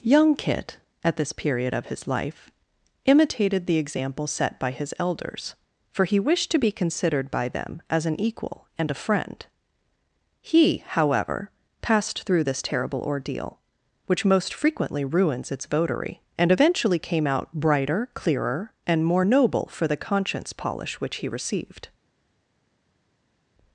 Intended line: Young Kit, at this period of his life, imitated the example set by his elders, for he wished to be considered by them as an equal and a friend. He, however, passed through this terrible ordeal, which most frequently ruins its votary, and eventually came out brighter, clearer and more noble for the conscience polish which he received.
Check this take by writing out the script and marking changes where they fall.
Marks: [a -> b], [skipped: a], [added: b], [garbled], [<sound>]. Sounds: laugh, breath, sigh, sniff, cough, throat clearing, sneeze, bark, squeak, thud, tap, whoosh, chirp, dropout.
Young Kit, at this period of his life, imitated the example set by his elders, for he wished to be considered by them as an equal and a friend. He, however, passed through this terrible ordeal, which most frequently ruins its votary, and eventually came out brighter, clearer and more noble for the conscience polish which he received.